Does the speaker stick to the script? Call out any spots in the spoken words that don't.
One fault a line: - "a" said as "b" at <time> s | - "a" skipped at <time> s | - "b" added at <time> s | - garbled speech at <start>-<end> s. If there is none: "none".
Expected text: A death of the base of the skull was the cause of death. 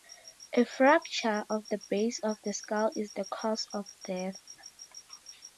- "death" said as "fracture" at 0.7 s
- "was" said as "is" at 3.0 s